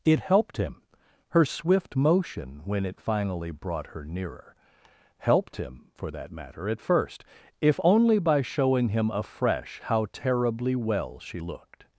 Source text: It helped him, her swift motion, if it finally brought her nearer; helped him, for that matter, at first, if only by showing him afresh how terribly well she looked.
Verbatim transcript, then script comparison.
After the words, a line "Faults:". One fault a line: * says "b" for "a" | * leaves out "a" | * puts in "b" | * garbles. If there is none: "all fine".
It helped him, her swift motion, when it finally brought her nearer; helped him, for that matter, at first, if only by showing him afresh how terribly well she looked.
Faults:
* says "when" for "if"